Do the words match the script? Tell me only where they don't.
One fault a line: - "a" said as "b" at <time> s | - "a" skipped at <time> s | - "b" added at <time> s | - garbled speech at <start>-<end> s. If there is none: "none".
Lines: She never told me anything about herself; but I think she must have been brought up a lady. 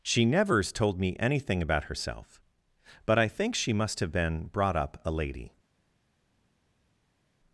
- "never" said as "nevers" at 0.2 s